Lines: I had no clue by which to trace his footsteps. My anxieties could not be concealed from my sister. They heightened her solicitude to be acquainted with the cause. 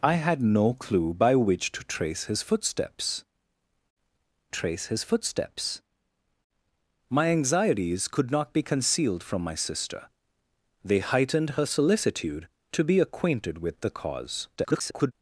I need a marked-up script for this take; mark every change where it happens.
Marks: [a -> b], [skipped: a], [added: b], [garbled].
I had no clue by which to trace his footsteps. [added: trace his footsteps] My anxieties could not be concealed from my sister. They heightened her solicitude to be acquainted with the cause. [garbled]